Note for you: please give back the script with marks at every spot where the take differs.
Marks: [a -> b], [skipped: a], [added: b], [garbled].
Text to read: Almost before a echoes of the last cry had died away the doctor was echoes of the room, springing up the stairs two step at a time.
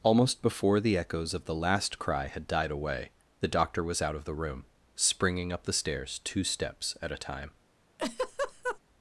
Almost before [a -> the] echoes of the last cry had died away the doctor was [echoes -> out] of the room, springing up the stairs two [step -> steps] at a time.